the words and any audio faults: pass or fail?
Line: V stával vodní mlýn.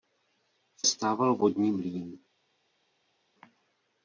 pass